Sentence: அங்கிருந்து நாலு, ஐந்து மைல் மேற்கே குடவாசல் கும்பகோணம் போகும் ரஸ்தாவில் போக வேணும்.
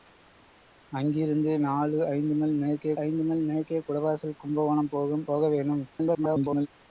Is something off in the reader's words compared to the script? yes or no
yes